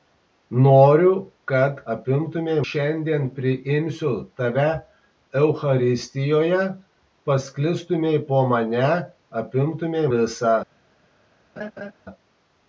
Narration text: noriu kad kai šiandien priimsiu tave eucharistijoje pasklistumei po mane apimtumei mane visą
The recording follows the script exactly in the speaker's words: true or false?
false